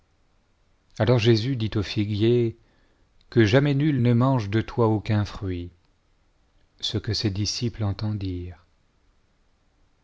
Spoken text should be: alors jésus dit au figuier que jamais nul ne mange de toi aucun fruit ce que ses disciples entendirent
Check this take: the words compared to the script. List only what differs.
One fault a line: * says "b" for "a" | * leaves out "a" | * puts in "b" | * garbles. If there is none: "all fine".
all fine